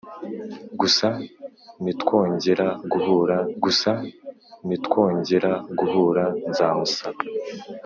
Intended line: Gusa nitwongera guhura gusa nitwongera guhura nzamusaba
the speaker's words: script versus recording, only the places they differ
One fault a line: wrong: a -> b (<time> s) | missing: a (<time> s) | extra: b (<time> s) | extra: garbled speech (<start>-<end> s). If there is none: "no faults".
no faults